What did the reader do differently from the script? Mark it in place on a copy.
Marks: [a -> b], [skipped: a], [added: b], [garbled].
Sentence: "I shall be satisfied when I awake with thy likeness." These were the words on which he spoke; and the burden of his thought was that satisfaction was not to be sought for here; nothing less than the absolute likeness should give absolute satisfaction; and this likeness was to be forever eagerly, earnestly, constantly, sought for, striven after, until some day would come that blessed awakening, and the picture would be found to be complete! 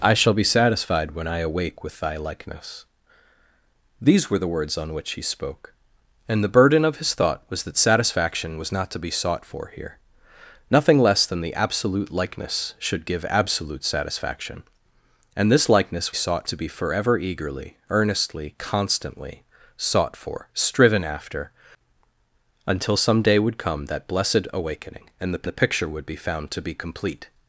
"I shall be satisfied when I awake with thy likeness." These were the words on which he spoke; and the burden of his thought was that satisfaction was not to be sought for here; nothing less than the absolute likeness should give absolute satisfaction; and this likeness [was -> sought] to be forever eagerly, earnestly, constantly, sought for, striven after, until some day would come that blessed awakening, and the [added: the] picture would be found to be complete!